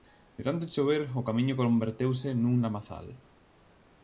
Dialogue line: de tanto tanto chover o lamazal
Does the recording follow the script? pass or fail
fail